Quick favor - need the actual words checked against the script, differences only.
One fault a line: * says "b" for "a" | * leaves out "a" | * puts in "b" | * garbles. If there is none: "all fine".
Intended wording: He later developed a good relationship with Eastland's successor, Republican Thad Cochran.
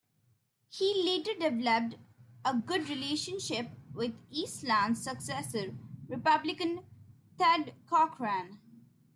all fine